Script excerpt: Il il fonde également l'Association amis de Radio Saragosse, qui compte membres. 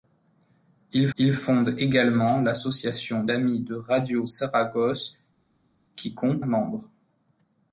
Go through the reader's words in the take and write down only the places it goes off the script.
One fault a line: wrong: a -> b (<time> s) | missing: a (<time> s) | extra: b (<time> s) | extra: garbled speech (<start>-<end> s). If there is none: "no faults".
no faults